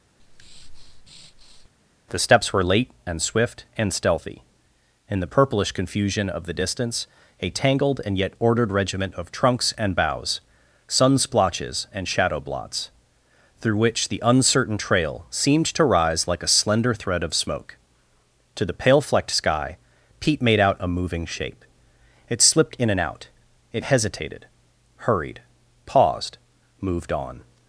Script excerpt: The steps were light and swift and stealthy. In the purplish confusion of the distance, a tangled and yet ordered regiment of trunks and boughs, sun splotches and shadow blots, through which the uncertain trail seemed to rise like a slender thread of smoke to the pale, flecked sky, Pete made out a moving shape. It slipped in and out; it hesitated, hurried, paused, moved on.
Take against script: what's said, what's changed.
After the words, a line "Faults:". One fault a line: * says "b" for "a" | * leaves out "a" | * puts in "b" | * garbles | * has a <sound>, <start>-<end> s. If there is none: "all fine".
The steps were late and swift and stealthy. In the purplish confusion of the distance, a tangled and yet ordered regiment of trunks and boughs, sun splotches and shadow blots, through which the uncertain trail seemed to rise like a slender thread of smoke to the pale, flecked sky, Pete made out a moving shape. It slipped in and out; it hesitated, hurried, paused, moved on.
Faults:
* has a breath, 0.2-1.7 s
* says "late" for "light"